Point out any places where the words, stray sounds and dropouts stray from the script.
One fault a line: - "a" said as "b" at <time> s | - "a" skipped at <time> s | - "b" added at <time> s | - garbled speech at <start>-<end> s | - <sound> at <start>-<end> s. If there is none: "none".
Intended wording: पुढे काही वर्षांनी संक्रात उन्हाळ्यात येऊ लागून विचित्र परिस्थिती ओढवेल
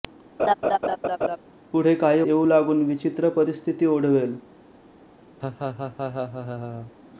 - laugh at 0.4-1.4 s
- "वर्षांनी संक्रात उन्हाळ्यात" skipped at 2.2 s
- laugh at 5.4-6.9 s